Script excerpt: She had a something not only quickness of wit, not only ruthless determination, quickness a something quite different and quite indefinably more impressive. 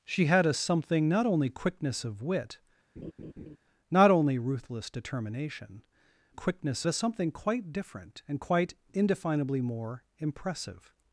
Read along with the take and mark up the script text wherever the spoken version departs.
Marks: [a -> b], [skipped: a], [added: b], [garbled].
She had a something not only quickness of wit, not only ruthless determination, quickness a something quite different and quite indefinably more impressive.